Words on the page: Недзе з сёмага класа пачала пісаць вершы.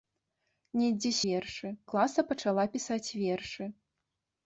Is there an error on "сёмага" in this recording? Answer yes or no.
yes